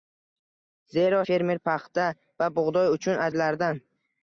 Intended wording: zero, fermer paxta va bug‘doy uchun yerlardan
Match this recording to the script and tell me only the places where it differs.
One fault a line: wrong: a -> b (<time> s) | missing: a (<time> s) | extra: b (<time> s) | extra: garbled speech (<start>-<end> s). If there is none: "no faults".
no faults